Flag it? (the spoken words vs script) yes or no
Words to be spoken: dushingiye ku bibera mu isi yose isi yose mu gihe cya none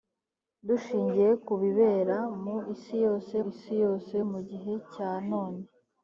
no